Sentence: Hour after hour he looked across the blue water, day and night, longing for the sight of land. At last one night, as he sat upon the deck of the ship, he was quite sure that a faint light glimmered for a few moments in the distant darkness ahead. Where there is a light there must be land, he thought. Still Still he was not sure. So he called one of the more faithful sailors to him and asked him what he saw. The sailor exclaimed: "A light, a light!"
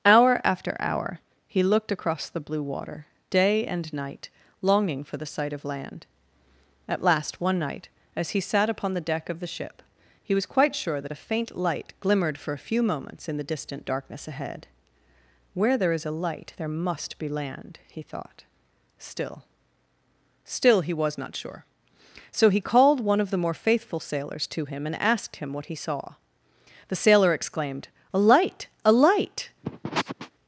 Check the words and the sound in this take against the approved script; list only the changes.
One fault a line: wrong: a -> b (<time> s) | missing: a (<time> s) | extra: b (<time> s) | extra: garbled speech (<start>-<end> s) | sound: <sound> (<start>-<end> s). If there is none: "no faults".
sound: sniff (29.6-30.3 s)